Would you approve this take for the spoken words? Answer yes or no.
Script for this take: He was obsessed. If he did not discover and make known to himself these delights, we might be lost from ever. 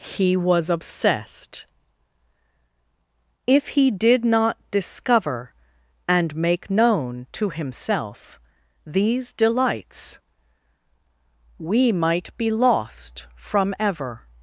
yes